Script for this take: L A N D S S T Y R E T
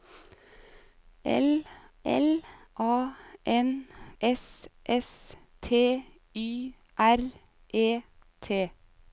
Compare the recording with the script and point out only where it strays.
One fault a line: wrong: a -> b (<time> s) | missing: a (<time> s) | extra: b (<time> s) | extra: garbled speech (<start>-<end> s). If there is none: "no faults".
extra: l (2.0 s)
missing: D (3.9 s)